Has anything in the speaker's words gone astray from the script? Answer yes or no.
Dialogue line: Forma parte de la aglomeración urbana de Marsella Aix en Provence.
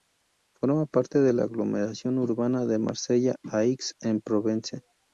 no